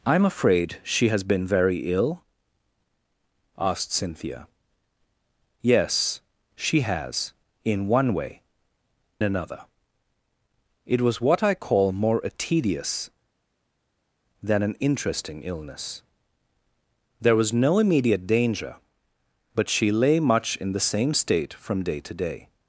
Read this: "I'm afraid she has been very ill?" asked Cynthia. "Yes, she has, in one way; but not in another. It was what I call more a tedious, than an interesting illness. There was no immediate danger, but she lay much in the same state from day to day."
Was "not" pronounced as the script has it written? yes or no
no